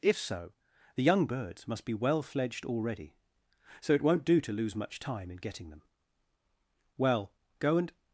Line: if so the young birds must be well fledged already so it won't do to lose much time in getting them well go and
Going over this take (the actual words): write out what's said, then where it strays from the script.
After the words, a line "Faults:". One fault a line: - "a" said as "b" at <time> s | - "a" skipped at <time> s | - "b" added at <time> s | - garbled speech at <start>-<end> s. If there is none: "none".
if so the young birds must be well fledged already so it won't do to lose much time in getting them well go and
Faults:
none